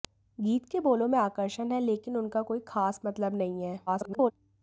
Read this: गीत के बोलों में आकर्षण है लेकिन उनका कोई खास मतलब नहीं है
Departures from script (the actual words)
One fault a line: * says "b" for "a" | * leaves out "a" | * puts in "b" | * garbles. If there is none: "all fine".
* garbles